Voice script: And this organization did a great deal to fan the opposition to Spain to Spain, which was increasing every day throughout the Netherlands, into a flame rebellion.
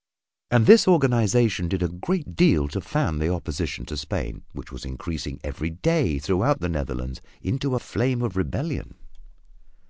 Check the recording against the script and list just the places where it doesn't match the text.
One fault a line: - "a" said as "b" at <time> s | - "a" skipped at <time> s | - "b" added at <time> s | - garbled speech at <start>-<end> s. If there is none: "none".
- "to Spain" skipped at 4.4 s
- "of" added at 8.2 s